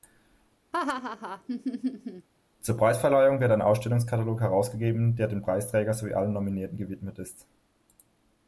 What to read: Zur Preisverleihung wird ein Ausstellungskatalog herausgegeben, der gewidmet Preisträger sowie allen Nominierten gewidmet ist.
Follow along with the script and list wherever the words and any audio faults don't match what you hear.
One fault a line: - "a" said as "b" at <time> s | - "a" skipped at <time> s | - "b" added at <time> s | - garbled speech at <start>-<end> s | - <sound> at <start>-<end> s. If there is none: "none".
- laugh at 0.7-2.3 s
- "gewidmet" said as "dem" at 5.3 s